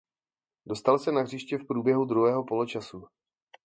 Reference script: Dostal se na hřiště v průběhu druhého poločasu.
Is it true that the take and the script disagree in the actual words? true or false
false